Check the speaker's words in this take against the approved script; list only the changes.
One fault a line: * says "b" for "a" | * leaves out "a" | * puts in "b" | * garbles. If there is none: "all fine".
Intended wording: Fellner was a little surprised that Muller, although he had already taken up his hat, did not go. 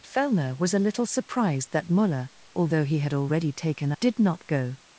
* leaves out "up his hat"